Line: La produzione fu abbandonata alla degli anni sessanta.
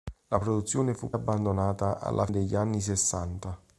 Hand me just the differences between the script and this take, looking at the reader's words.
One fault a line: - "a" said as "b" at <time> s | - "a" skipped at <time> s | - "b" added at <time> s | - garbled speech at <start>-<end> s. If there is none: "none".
none